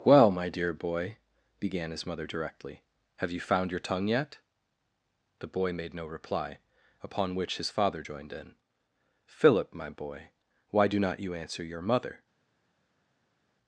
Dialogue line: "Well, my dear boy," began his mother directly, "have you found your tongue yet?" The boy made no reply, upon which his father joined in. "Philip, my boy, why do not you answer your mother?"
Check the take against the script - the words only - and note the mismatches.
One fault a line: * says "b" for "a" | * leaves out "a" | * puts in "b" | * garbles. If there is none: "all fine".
all fine